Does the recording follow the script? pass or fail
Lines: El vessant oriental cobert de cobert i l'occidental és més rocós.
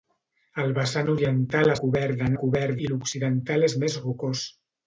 pass